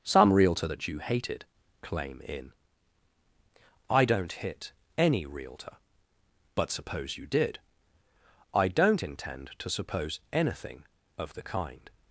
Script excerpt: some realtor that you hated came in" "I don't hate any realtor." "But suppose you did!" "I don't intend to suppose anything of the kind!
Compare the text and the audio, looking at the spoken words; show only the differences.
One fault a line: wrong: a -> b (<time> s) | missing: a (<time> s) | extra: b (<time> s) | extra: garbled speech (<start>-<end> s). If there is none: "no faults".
wrong: came -> claim (1.8 s)
wrong: hate -> hit (4.3 s)